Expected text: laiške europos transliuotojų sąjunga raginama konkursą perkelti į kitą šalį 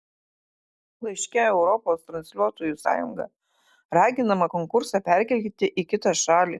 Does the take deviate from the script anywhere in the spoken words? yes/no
no